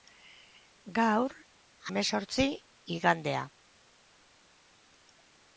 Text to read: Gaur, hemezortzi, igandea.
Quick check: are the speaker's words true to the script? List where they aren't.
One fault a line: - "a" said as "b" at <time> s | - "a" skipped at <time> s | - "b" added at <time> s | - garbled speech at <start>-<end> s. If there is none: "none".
none